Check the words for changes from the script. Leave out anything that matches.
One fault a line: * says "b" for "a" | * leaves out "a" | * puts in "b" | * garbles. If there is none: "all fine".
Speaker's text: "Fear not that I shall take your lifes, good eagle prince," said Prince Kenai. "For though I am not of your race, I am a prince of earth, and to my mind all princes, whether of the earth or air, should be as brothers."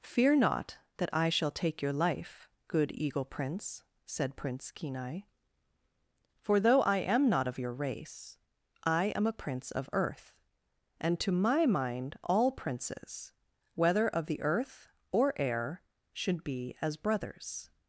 * says "life" for "lifes"